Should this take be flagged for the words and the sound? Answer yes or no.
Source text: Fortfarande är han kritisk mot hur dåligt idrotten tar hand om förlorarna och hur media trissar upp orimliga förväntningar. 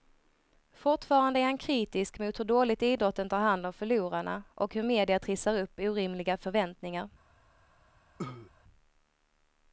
yes